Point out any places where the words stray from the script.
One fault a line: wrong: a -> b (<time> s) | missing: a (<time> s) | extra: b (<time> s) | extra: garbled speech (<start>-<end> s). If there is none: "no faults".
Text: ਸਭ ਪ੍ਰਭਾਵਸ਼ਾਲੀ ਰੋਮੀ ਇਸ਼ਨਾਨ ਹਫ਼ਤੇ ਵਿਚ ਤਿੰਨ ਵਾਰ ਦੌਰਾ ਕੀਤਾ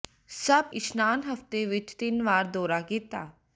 missing: ਪ੍ਰਭਾਵਸ਼ਾਲੀ ਰੋਮੀ (0.7 s)